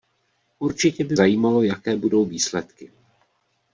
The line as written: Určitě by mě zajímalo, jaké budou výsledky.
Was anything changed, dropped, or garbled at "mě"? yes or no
yes